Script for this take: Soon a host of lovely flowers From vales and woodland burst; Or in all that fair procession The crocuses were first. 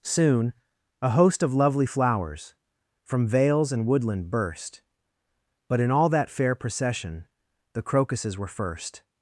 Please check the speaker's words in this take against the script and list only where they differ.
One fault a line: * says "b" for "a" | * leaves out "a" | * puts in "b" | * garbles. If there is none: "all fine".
* says "But" for "Or"